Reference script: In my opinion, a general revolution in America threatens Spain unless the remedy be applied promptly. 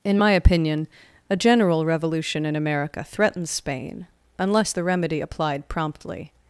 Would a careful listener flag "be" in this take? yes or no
yes